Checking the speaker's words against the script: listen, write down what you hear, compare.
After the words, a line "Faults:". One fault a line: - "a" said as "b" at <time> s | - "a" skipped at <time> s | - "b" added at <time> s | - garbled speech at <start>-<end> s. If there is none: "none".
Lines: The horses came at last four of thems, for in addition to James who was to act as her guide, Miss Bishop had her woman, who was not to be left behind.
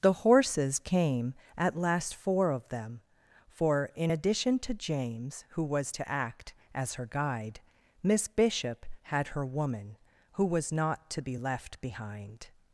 The horses came at last four of them, for in addition to James who was to act as her guide, Miss Bishop had her woman, who was not to be left behind.
Faults:
- "thems" said as "them" at 2.7 s